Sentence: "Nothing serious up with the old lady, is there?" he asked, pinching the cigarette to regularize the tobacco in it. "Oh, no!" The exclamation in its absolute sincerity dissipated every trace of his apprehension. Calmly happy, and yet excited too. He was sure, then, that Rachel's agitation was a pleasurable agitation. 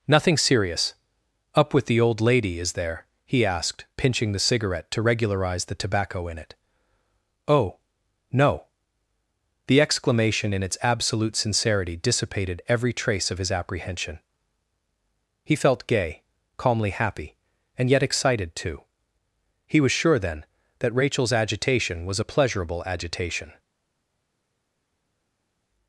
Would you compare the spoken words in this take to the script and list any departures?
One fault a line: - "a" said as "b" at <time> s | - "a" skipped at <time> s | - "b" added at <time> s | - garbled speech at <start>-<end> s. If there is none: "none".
- "He felt gay" added at 15.4 s